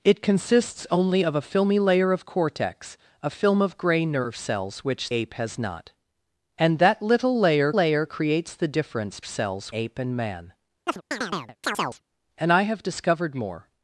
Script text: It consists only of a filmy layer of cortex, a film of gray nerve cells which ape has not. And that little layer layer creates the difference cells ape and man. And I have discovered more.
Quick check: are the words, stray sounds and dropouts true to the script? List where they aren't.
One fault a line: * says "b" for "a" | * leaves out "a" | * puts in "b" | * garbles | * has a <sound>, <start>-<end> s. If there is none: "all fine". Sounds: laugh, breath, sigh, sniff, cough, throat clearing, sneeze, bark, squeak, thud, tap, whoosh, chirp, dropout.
* has a chirp, 10.9-12.0 s